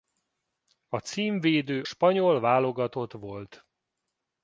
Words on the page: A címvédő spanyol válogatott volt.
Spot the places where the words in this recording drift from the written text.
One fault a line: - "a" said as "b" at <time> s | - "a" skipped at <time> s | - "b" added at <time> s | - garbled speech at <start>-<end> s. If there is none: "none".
none